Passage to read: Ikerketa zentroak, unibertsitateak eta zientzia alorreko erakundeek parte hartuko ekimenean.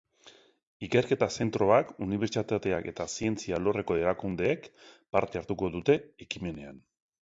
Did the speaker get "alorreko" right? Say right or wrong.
right